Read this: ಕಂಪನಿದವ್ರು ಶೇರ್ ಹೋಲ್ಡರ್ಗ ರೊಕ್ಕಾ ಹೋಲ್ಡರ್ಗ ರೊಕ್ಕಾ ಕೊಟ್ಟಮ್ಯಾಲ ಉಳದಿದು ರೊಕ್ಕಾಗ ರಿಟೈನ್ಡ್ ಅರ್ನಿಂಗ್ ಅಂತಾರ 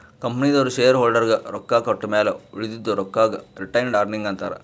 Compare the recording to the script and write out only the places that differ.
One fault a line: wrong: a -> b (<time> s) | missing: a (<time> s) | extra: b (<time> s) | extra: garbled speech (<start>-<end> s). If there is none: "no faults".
missing: ಹೋಲ್ಡರ್ಗ ರೊಕ್ಕಾ (1.8 s)